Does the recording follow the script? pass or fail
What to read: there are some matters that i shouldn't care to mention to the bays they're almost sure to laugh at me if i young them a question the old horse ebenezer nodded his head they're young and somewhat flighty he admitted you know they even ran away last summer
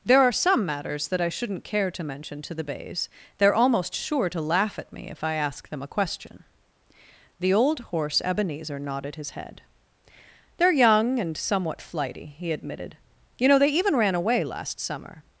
fail